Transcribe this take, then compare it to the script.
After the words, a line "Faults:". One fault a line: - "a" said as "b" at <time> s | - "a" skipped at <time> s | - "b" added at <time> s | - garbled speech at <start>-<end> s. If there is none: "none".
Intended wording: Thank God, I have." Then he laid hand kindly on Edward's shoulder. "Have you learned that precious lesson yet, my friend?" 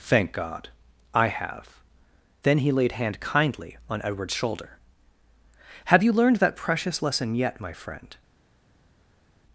Thank God, I have." Then he laid hand kindly on Edward's shoulder. "Have you learned that precious lesson yet, my friend?"
Faults:
none